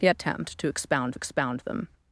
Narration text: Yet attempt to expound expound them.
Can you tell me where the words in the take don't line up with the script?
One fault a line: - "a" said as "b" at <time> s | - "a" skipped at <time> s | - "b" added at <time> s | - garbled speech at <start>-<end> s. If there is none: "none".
none